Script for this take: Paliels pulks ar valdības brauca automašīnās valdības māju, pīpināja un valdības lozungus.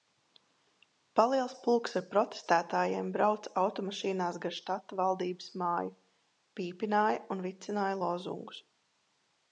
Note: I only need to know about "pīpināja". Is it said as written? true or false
true